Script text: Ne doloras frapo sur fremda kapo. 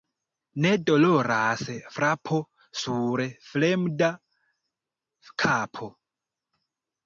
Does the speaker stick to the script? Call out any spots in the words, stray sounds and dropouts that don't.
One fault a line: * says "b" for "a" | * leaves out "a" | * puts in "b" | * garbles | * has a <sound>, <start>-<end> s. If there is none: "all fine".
all fine